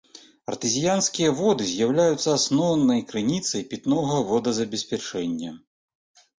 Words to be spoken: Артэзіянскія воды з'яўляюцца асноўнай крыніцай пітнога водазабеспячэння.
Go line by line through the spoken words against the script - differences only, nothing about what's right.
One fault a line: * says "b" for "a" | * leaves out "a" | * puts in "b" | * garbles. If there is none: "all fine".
all fine